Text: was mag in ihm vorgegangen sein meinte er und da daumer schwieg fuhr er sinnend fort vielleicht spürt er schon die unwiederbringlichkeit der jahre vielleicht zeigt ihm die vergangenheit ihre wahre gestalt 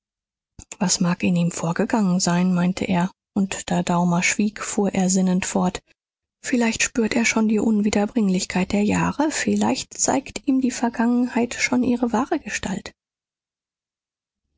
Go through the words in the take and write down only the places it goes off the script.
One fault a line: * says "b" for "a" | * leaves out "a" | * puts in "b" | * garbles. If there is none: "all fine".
* puts in "schon"